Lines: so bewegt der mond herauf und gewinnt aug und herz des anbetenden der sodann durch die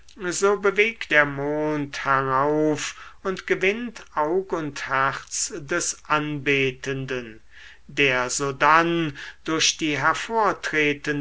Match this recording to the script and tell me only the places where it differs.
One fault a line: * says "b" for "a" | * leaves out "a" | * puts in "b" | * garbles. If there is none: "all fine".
all fine